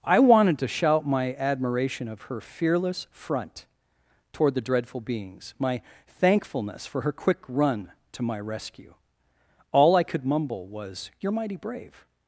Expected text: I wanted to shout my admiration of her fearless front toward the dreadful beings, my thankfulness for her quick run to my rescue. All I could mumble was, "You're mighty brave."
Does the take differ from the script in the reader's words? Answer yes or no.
no